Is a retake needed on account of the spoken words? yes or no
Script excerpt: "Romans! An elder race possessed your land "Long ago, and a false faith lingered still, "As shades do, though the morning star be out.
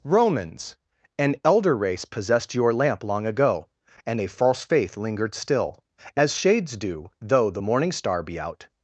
yes